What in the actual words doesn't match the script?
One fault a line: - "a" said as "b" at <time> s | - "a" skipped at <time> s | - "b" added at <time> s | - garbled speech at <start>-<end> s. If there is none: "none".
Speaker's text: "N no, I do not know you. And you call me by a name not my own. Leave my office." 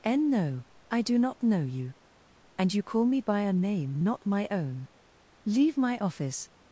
none